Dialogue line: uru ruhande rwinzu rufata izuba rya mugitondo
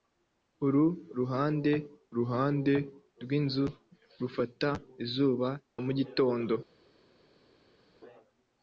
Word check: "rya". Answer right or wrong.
wrong